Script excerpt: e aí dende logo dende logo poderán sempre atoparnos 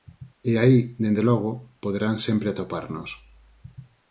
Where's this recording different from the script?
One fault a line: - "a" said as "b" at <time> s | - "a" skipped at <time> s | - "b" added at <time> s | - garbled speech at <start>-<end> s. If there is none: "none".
- "dende logo" skipped at 1.5 s